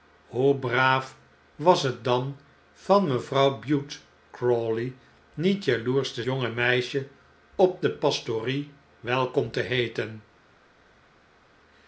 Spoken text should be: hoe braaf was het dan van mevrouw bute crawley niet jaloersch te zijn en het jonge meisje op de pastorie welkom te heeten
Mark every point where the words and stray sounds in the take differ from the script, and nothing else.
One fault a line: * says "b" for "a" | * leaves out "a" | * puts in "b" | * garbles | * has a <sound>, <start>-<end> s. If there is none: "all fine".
* leaves out "zijn en het"